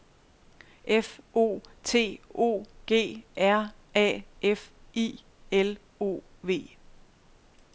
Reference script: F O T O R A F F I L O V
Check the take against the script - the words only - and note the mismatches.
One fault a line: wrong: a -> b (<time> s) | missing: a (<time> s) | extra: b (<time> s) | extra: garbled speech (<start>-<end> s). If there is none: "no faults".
extra: G (2.9 s)
missing: F (4.7 s)